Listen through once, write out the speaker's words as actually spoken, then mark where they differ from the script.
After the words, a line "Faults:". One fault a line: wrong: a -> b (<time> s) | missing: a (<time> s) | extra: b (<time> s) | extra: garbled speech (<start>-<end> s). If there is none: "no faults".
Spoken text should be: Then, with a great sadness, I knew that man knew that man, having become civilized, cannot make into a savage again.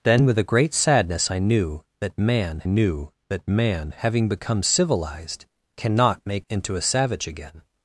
Then, with a great sadness, I knew that man knew that man, having become civilized, cannot make into a savage again.
Faults:
no faults